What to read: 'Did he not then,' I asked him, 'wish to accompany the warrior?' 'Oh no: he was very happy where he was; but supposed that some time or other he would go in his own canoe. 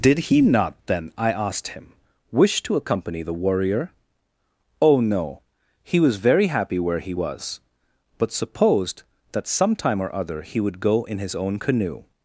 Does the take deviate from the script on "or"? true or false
false